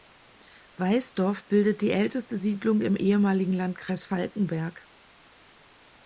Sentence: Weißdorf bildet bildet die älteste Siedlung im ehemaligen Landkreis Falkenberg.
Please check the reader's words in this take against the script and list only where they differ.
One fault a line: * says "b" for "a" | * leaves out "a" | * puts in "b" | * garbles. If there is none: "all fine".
* leaves out "bildet"